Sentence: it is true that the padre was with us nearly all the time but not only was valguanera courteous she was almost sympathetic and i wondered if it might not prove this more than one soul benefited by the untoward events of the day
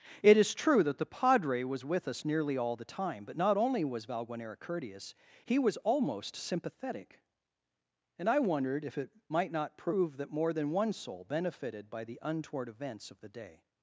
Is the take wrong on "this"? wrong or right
wrong